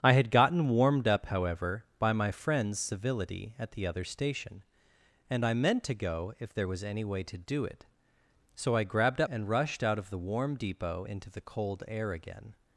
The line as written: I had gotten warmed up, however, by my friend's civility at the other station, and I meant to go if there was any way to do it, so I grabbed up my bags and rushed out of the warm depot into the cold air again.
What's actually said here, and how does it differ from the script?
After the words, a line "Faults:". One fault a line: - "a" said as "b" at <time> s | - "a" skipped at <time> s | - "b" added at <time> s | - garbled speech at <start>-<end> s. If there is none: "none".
I had gotten warmed up, however, by my friend's civility at the other station, and I meant to go if there was any way to do it, so I grabbed up and rushed out of the warm depot into the cold air again.
Faults:
- "my bags" skipped at 9.3 s